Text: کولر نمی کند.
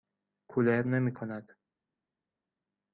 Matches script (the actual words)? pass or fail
pass